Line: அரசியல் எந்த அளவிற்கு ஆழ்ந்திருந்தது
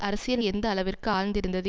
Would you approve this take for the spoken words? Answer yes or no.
yes